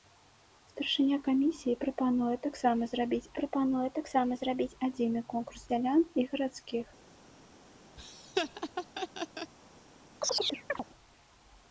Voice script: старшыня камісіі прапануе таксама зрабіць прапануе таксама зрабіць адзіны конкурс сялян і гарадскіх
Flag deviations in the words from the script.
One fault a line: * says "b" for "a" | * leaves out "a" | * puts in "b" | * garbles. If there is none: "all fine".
all fine